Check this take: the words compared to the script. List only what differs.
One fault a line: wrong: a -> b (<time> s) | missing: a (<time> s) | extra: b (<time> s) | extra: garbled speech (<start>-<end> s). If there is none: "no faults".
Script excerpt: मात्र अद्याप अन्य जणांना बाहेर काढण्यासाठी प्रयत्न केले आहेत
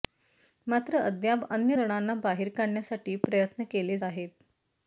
no faults